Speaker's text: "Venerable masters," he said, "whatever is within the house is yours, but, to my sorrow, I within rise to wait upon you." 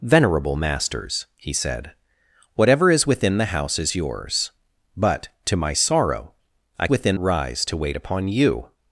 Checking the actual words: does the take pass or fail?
pass